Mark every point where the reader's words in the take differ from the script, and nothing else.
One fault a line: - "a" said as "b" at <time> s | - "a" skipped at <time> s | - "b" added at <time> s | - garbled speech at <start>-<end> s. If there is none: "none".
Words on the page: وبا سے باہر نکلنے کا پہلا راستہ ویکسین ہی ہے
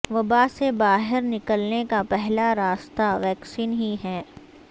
none